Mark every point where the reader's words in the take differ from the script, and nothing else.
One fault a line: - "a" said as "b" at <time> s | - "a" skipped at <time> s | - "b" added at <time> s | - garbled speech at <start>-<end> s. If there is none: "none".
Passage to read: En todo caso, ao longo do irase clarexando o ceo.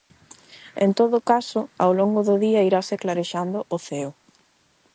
- "día" added at 2.5 s